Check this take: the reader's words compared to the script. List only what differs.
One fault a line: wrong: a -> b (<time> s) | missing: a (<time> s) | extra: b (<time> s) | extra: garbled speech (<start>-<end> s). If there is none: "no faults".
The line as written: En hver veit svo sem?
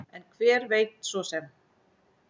no faults